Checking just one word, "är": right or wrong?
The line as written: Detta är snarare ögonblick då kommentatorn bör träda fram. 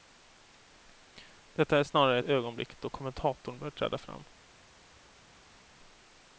right